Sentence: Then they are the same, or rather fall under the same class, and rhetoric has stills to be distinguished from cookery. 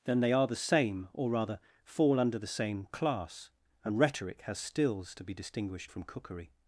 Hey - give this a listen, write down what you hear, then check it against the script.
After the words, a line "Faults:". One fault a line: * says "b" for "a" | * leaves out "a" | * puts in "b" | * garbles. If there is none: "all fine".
Then they are the same, or rather fall under the same class, and rhetoric has stills to be distinguished from cookery.
Faults:
all fine